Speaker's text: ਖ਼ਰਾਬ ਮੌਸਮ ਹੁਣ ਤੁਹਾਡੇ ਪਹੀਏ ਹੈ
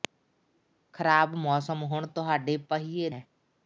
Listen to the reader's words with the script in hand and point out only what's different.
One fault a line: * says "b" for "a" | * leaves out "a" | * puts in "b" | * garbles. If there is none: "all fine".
all fine